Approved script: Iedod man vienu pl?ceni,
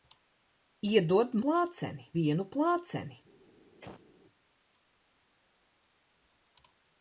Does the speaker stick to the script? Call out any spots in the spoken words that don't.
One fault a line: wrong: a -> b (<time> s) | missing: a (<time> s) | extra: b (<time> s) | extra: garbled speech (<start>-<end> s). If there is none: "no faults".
wrong: man -> pl?ceni (1.4 s)